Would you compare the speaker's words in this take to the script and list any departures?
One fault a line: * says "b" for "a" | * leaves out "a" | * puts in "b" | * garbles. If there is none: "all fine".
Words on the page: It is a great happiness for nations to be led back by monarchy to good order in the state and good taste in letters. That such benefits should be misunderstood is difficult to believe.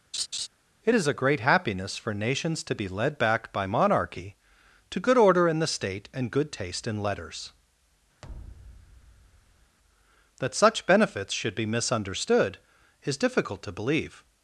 all fine